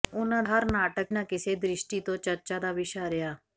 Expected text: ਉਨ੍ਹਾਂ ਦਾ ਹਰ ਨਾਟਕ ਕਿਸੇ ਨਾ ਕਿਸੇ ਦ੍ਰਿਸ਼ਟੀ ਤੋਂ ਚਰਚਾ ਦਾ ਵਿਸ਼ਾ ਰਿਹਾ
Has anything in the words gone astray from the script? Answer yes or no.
yes